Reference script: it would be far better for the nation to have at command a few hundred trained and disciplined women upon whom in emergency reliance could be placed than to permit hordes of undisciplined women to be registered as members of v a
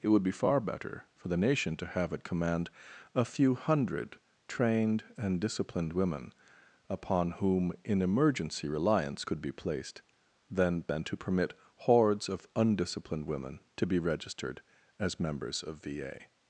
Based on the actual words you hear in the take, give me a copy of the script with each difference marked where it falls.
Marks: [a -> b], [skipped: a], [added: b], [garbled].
it would be far better for the nation to have at command a few hundred trained and disciplined women upon whom in emergency reliance could be placed than [added: than] to permit hordes of undisciplined women to be registered as members of v a